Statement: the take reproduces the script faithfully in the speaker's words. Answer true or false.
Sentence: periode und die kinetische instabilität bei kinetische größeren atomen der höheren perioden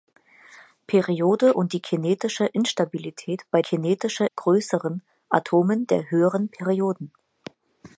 true